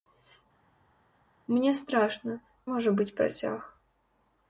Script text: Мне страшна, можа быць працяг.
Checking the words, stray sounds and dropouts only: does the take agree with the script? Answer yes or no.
yes